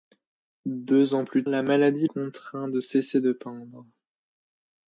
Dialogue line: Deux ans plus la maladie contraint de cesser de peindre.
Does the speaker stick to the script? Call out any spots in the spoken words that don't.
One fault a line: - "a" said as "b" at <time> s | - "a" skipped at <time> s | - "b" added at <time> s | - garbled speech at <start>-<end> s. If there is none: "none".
none